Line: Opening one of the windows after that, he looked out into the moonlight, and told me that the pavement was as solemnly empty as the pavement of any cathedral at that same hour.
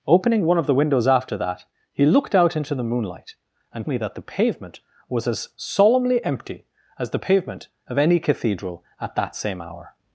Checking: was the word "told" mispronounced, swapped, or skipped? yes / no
yes